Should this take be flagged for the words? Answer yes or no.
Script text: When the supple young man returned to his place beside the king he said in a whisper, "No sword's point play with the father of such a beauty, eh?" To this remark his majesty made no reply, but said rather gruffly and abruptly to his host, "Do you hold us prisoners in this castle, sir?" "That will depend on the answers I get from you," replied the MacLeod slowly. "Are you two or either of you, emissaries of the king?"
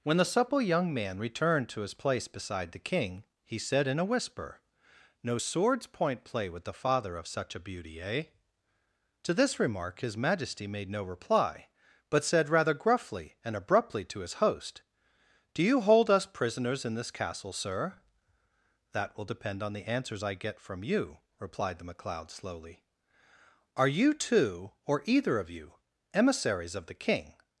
no